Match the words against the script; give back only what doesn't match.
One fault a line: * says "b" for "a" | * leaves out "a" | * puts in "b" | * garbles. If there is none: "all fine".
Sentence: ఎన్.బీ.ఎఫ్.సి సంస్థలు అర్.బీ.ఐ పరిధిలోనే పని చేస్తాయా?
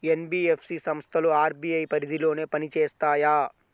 all fine